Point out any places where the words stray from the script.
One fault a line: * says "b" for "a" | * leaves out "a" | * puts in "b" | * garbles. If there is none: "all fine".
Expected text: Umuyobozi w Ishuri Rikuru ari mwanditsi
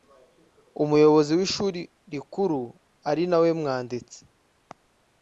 * puts in "nawe"